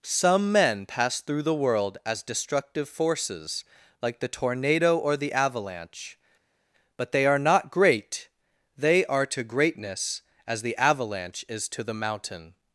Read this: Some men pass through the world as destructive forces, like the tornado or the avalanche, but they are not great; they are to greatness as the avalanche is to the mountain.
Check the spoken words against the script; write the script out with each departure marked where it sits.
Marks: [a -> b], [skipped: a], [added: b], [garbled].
Some men pass through the world as destructive forces, like the tornado or the avalanche, but they are not great; they are to greatness as the avalanche is to the mountain.